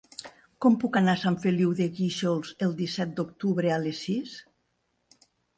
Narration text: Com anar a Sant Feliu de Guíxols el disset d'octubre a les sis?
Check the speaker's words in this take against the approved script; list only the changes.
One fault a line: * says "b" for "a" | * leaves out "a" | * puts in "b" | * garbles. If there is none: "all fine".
* puts in "puc"